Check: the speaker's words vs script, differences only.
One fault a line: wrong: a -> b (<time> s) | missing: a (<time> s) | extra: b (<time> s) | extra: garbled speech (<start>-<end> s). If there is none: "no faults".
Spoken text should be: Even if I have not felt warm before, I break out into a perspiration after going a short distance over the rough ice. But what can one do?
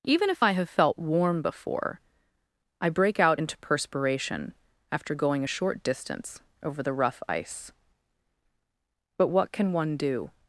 missing: not (0.7 s)
missing: a (3.6 s)